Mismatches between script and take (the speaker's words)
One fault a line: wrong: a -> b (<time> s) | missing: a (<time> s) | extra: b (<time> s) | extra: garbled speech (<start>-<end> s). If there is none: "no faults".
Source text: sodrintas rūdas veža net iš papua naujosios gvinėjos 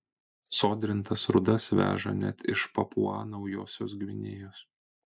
no faults